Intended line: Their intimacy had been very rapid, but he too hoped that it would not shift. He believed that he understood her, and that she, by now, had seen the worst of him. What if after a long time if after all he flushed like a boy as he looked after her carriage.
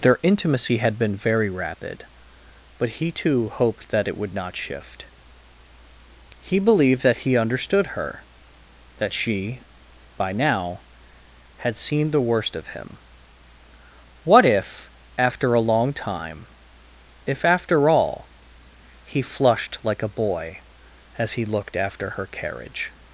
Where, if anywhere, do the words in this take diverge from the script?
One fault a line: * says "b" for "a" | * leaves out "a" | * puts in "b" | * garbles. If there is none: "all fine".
* leaves out "and"